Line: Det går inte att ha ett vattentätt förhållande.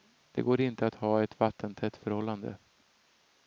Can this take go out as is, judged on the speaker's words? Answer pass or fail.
pass